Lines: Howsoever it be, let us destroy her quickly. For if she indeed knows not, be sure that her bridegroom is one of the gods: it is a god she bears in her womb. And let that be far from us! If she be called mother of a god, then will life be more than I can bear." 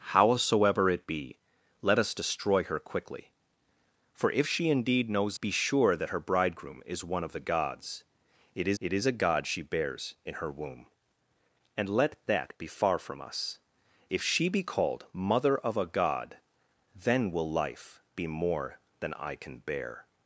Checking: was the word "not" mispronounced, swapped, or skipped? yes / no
yes